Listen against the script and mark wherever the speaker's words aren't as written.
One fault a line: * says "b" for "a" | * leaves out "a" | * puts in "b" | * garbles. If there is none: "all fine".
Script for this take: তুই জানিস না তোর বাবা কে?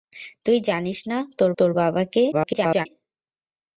* puts in "তোর"
* garbles